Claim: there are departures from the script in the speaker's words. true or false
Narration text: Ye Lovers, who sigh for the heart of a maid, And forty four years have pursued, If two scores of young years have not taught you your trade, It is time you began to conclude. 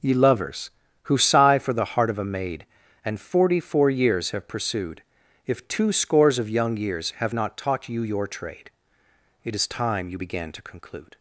false